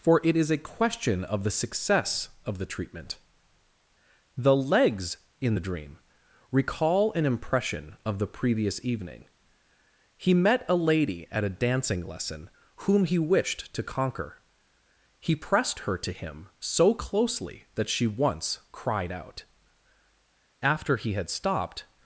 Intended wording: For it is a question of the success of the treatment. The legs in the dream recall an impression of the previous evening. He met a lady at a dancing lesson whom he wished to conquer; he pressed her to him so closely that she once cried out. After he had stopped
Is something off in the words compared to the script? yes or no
no